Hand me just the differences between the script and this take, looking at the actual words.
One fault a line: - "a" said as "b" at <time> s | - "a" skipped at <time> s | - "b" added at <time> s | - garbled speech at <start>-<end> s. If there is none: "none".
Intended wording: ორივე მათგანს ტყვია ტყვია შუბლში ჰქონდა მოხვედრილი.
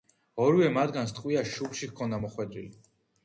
- "ტყვია" skipped at 1.4 s